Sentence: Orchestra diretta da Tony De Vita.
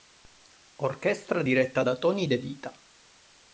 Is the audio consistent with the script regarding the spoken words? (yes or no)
yes